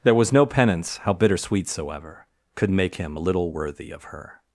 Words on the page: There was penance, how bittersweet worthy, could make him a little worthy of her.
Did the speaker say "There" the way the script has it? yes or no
yes